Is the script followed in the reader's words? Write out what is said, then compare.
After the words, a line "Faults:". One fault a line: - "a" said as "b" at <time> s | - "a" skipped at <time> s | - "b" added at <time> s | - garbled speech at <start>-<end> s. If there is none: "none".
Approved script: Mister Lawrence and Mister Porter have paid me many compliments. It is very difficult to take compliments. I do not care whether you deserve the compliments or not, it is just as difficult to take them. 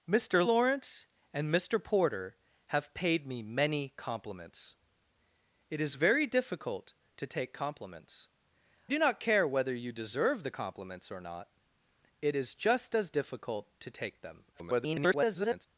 Mister Lawrence and Mister Porter have paid me many compliments. It is very difficult to take compliments. do not care whether you deserve the compliments or not, it is just as difficult to take them. [garbled]
Faults:
- "I" skipped at 8.3 s
- garbled speech at 14.5-15.7 s